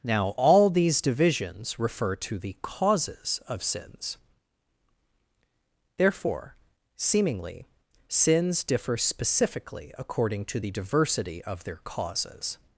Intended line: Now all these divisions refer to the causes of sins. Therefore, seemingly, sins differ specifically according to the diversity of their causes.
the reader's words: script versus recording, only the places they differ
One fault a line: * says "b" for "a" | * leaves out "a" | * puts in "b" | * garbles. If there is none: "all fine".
all fine